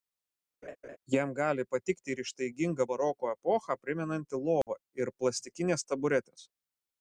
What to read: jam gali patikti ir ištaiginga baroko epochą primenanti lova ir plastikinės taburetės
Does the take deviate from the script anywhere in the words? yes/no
no